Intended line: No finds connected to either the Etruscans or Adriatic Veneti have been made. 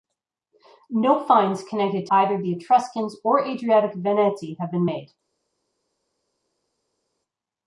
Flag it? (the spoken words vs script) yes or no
yes